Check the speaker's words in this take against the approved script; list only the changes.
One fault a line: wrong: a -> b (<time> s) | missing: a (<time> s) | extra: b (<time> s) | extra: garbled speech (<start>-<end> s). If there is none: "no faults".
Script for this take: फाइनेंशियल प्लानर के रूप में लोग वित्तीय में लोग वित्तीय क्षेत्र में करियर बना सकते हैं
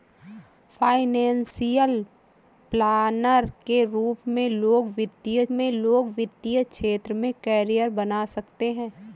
no faults